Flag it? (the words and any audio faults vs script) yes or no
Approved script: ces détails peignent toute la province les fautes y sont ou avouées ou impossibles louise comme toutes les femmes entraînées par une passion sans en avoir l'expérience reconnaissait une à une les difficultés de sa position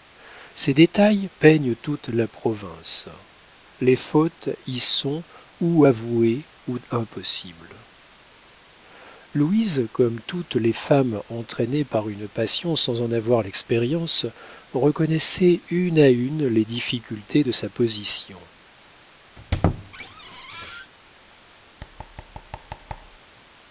yes